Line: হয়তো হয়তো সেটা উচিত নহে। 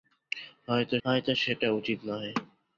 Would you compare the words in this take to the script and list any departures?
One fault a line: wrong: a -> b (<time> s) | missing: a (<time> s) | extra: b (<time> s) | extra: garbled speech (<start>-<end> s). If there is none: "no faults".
no faults